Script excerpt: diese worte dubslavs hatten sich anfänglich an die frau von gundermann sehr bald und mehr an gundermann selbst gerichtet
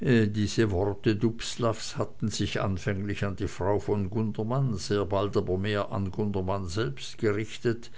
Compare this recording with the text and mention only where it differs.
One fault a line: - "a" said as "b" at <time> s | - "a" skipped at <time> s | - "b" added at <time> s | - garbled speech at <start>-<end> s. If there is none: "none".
- "und" said as "aber" at 5.4 s